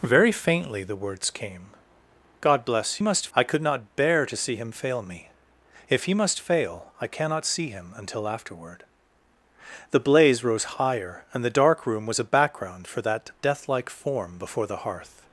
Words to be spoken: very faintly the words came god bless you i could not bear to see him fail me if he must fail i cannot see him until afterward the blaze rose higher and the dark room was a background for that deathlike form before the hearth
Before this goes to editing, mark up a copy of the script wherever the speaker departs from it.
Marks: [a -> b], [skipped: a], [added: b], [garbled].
very faintly the words came god bless [you -> must] i could not bear to see him fail me if he must fail i cannot see him until afterward the blaze rose higher and the dark room was a background for that deathlike form before the hearth